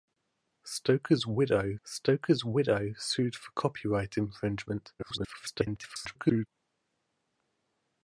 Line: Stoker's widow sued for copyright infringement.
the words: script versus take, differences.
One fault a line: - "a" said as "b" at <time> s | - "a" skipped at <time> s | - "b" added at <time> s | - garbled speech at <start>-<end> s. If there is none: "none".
- "stoker's widow" added at 1.8 s
- garbled speech at 5.0-6.5 s